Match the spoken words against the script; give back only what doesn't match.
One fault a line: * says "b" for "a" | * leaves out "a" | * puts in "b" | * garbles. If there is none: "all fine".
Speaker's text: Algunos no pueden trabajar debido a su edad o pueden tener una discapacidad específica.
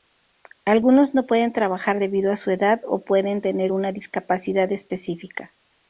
all fine